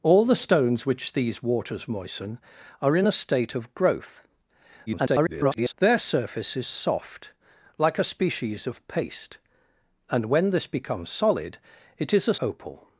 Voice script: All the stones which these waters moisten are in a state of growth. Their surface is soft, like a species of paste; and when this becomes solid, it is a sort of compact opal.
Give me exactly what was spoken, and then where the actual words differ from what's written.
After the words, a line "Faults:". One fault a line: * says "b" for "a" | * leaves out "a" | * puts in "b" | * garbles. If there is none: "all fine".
All the stones which these waters moisten are in a state of growth. [garbled] Their surface is soft, like a species of paste; and when this becomes solid, it is a opal.
Faults:
* garbles
* leaves out "sort of compact"